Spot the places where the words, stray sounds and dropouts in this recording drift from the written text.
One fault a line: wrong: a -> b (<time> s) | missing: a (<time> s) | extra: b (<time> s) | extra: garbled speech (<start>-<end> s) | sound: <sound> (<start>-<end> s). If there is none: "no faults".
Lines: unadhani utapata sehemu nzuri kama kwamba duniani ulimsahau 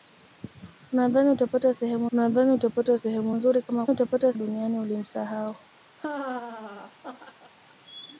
extra: unadhani utapata sehemu (2.1 s)
wrong: kwamba -> utapata (3.9 s)
sound: laugh (6.0-7.5 s)